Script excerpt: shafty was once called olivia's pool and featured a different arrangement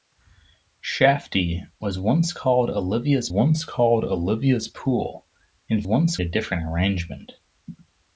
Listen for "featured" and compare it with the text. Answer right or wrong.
wrong